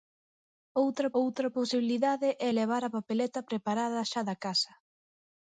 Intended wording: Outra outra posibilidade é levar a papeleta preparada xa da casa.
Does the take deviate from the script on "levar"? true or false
false